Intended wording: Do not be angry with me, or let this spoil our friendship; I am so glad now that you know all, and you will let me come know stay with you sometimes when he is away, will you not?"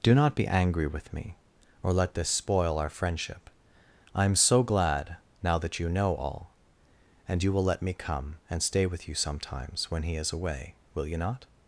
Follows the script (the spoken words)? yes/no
no